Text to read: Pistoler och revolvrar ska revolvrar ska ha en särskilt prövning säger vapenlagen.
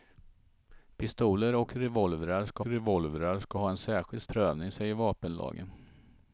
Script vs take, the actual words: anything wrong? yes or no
no